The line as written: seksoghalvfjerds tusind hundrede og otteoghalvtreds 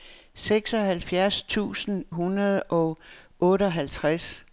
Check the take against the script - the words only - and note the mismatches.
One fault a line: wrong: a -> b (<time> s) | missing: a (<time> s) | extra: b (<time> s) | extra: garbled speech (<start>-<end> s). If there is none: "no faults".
no faults